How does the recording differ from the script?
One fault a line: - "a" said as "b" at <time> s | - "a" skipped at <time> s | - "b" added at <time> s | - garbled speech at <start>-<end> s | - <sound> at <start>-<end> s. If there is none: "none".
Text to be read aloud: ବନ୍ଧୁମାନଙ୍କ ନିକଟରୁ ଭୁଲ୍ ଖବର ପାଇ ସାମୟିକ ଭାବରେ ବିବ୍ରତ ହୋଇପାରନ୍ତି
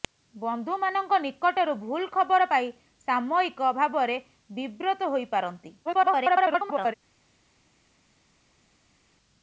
- garbled speech at 5.9-6.9 s